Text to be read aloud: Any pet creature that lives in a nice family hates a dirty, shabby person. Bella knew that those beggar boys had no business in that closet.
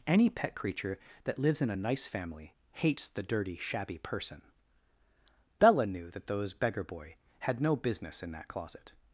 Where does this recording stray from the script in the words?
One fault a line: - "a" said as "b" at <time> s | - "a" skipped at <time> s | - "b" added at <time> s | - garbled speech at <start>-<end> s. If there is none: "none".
- "a" said as "the" at 3.1 s
- "boys" said as "boy" at 6.8 s